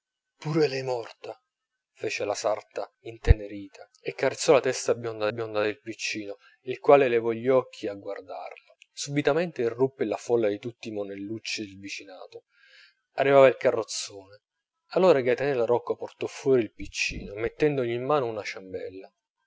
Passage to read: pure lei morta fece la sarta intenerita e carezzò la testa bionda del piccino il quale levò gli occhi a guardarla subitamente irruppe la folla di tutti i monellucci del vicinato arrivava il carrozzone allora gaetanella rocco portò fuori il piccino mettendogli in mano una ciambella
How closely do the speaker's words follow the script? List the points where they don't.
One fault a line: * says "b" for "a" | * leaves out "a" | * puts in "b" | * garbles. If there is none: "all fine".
* puts in "bionda"